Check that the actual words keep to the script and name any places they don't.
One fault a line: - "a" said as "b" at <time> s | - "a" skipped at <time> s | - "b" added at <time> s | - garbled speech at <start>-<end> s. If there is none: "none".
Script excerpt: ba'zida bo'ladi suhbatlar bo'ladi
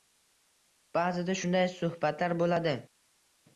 - "bo'ladi" said as "shunday" at 1.4 s